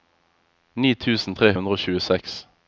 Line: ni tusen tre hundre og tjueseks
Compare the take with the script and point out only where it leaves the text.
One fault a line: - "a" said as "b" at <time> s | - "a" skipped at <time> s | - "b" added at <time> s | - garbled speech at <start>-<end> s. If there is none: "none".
none